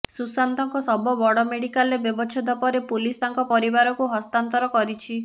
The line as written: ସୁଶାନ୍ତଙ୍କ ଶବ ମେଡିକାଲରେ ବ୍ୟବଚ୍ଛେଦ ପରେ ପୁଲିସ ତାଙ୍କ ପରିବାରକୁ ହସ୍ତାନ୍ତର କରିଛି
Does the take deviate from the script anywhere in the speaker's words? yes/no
yes